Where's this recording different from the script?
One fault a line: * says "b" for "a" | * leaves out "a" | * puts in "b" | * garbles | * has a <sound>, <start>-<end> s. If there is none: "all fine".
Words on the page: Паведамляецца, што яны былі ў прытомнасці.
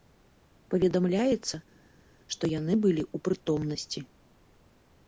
all fine